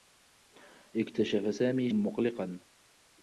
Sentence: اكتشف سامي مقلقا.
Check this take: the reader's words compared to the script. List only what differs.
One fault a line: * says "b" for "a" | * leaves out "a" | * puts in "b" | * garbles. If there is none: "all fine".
all fine